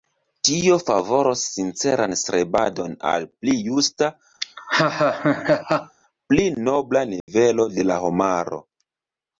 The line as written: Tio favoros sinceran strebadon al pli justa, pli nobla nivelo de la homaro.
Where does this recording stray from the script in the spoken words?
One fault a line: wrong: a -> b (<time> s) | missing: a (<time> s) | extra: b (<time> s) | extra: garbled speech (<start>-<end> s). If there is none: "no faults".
no faults